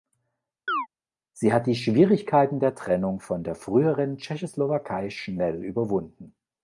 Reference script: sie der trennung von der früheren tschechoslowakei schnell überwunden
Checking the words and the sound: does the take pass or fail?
fail